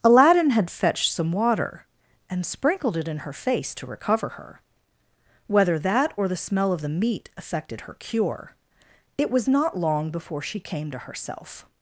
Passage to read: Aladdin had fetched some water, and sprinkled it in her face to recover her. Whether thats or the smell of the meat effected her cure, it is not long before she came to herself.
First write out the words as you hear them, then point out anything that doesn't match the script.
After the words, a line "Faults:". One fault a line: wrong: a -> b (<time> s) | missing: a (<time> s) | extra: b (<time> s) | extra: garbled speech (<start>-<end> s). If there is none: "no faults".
Aladdin had fetched some water, and sprinkled it in her face to recover her. Whether that or the smell of the meat effected her cure, it was not long before she came to herself.
Faults:
wrong: thats -> that (5.8 s)
wrong: is -> was (9.3 s)